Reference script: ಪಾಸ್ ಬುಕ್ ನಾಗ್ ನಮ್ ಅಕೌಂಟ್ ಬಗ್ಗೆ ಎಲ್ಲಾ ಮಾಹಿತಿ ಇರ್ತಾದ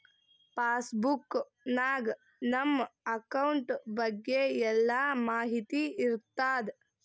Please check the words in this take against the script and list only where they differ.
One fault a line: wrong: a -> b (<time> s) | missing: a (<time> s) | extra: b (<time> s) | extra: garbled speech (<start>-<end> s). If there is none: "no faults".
no faults